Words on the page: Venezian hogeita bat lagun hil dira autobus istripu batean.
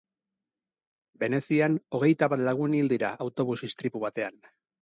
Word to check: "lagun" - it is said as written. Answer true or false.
true